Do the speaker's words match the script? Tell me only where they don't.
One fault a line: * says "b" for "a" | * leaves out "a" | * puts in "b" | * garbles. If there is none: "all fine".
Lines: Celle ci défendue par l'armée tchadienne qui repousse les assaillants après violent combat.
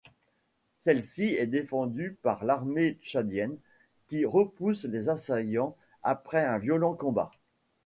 * puts in "est"
* puts in "un"